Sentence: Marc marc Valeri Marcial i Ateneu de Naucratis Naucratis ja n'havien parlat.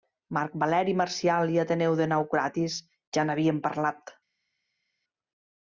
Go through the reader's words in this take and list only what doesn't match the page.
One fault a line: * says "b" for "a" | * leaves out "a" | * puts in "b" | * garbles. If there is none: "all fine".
* leaves out "marc"
* leaves out "Naucratis"